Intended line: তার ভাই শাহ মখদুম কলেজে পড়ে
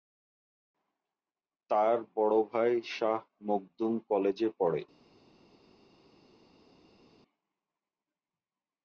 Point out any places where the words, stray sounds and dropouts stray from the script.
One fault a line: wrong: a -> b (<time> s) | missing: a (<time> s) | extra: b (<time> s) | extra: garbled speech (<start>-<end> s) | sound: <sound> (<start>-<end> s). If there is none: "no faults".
extra: বড় (2.1 s)